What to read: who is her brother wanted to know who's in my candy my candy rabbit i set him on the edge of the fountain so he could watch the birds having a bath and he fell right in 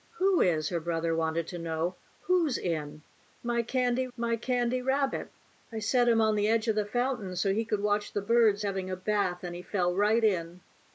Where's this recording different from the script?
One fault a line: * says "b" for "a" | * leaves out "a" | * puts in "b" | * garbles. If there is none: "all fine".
all fine